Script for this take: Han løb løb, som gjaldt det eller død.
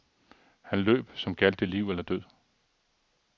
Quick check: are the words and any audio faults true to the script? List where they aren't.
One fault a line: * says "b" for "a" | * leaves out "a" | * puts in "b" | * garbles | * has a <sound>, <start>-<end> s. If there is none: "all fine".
* leaves out "løb"
* puts in "liv"